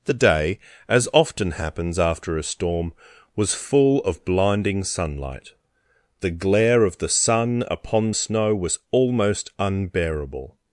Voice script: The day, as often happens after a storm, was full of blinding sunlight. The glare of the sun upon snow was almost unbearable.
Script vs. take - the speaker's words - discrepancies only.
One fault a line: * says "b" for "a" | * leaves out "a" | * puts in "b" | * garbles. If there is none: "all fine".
all fine